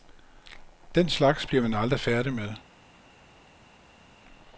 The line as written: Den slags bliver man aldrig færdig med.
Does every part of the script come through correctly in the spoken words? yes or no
yes